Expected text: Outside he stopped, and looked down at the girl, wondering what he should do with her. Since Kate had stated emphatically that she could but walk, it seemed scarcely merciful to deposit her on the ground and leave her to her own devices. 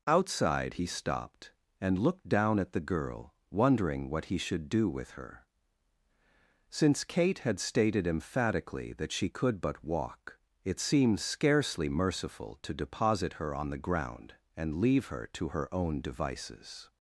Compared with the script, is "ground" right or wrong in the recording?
right